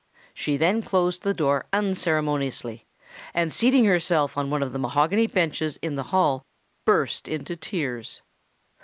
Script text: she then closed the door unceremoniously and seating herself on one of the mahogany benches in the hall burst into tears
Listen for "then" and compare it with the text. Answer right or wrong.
right